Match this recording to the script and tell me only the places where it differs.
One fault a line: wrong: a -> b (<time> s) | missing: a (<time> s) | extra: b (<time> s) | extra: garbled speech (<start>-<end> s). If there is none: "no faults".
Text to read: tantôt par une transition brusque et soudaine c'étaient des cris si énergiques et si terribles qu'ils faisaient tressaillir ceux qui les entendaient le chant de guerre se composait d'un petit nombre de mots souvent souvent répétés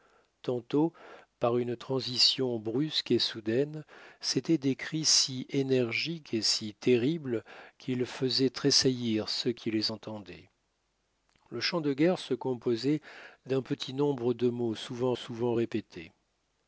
no faults